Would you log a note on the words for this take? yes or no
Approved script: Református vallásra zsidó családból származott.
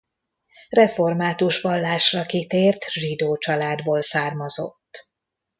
yes